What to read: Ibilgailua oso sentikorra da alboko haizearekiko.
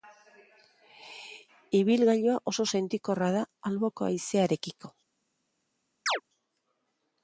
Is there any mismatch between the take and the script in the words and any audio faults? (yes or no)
yes